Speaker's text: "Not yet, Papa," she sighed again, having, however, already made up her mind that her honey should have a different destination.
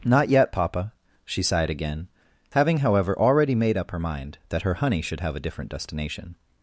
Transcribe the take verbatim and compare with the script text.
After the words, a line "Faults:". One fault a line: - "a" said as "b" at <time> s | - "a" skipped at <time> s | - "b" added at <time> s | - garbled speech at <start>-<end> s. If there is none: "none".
"Not yet, Papa," she sighed again, having, however, already made up her mind that her honey should have a different destination.
Faults:
none